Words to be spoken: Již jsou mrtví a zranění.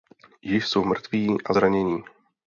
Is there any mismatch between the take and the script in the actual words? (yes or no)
no